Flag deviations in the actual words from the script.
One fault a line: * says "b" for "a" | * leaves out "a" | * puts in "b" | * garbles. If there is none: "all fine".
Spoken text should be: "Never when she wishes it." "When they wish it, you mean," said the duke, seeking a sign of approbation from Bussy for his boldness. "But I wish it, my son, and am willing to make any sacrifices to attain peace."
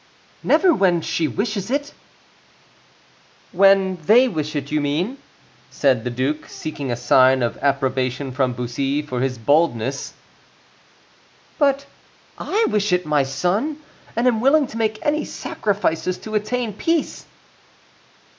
all fine